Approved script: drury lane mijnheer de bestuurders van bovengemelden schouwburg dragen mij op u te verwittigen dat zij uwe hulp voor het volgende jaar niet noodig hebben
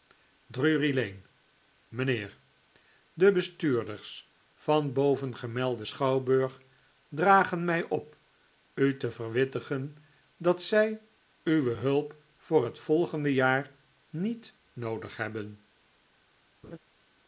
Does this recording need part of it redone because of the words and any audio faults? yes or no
yes